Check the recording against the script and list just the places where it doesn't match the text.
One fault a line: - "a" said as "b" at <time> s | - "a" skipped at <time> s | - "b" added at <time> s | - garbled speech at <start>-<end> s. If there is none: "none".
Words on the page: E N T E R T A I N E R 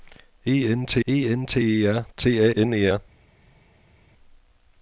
- "N T E" added at 1.3 s
- "I" skipped at 2.5 s